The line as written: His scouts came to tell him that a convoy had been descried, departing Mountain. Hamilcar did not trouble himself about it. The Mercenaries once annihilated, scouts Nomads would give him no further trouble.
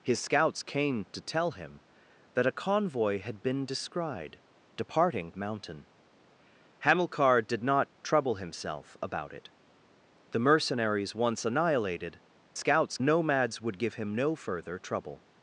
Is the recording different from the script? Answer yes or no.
no